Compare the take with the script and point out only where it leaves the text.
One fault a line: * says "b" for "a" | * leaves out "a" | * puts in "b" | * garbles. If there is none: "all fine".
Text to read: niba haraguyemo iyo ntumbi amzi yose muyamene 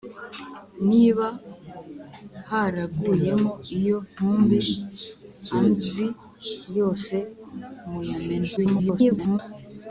* garbles